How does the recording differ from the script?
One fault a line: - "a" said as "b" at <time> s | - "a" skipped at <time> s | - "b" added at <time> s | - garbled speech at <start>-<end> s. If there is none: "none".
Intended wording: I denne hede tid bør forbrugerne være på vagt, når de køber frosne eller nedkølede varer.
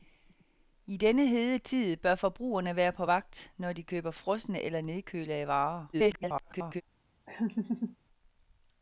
- garbled speech at 5.9-6.8 s